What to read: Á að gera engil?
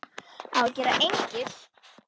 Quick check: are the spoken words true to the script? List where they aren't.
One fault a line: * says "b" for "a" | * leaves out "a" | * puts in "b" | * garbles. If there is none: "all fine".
all fine